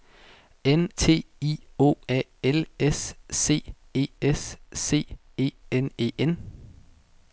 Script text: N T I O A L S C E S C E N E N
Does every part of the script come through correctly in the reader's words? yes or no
yes